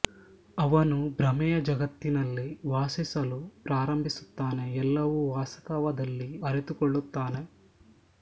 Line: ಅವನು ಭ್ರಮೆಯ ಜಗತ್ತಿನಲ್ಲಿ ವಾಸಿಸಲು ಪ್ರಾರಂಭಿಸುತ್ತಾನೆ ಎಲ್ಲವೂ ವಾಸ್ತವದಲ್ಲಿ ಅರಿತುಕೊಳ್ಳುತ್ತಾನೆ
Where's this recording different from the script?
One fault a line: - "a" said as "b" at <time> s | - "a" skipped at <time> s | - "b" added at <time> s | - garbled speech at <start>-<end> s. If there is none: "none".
none